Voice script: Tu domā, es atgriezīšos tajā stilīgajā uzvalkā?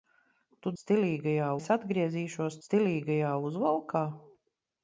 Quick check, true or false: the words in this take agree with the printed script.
false